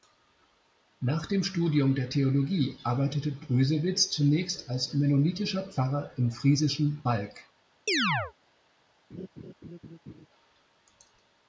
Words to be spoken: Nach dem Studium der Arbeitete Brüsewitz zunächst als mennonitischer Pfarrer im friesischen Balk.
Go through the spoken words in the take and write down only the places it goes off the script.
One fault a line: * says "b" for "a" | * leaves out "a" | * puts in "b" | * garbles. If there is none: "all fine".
* puts in "Theologie"